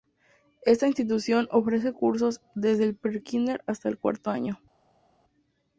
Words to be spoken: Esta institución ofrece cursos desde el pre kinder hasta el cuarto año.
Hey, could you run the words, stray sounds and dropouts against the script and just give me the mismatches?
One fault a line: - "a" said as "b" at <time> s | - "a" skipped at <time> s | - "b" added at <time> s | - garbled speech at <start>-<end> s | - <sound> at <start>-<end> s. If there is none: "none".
none